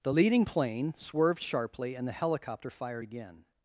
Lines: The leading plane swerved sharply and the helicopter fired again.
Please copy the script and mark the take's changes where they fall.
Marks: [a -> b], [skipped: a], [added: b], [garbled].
The leading plane swerved sharply and the helicopter fired again.